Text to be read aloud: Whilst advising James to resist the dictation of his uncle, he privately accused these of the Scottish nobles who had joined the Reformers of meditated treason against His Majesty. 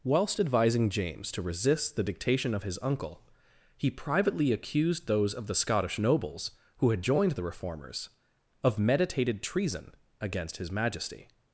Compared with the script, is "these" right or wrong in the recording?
wrong